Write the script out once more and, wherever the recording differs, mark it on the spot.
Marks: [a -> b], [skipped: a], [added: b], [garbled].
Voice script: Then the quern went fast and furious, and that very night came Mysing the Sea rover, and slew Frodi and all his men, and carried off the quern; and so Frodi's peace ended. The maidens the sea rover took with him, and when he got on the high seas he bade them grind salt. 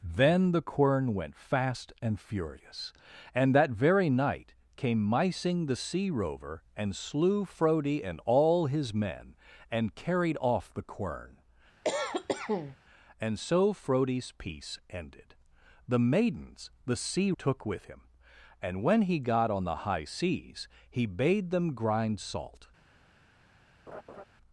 Then the quern went fast and furious, and that very night came Mysing the Sea rover, and slew Frodi and all his men, and carried off the quern; and so Frodi's peace ended. The maidens the sea [skipped: rover] took with him, and when he got on the high seas he bade them grind salt.